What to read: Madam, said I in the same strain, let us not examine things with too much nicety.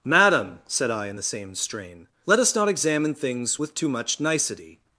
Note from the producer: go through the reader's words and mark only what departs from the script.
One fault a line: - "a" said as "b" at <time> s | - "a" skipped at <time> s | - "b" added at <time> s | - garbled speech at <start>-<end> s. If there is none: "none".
none